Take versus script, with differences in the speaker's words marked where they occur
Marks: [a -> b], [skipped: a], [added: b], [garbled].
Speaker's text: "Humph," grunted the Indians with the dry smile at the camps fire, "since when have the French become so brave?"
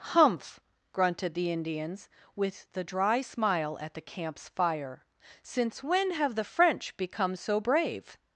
"Humph," grunted the Indians with the dry smile at the camps fire, "since when have the French become so brave?"